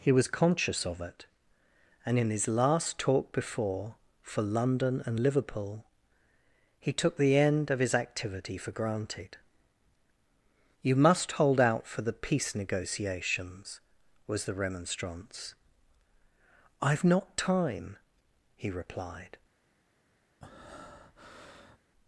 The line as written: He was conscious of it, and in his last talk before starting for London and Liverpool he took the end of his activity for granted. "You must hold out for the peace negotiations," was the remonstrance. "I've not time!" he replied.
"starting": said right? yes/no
no